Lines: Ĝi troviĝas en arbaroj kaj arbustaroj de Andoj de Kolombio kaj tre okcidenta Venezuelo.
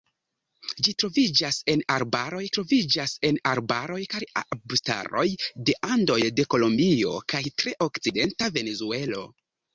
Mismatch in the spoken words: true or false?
true